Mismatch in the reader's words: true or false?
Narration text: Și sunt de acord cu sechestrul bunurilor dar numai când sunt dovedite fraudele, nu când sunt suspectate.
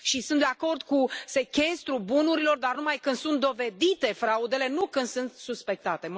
false